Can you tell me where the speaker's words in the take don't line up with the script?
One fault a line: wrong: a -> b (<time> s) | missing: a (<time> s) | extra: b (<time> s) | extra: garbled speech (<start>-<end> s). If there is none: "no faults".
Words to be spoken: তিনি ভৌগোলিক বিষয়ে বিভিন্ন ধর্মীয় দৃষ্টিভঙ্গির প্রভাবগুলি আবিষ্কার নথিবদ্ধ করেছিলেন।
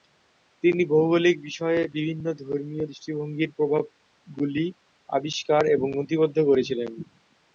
extra: এবং (5.8 s)